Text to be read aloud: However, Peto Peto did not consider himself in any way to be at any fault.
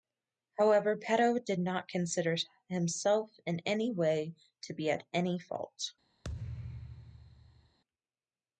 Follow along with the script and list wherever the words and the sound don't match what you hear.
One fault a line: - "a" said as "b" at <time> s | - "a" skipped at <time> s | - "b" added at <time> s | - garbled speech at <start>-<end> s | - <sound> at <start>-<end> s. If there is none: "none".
- "Peto" skipped at 1.4 s
- thud at 6.2-7.8 s